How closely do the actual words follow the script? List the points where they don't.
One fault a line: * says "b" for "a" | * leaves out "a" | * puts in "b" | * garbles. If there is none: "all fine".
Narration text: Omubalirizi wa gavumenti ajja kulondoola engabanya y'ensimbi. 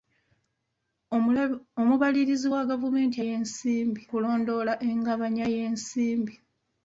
* says "y'ensimbi" for "ajja"